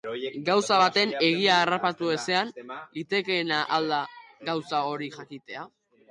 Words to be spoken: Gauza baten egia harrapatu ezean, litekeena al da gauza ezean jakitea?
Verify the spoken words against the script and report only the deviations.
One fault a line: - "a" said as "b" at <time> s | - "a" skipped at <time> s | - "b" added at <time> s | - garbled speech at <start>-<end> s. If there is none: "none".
- "ezean" said as "hori" at 4.9 s